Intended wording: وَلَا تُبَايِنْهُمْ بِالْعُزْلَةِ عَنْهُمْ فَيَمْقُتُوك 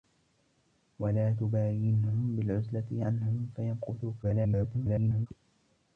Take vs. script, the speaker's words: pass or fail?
fail